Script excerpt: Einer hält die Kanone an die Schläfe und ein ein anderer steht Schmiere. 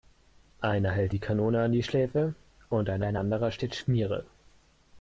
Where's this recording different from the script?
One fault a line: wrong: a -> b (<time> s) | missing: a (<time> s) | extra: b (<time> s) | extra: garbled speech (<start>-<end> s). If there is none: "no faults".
no faults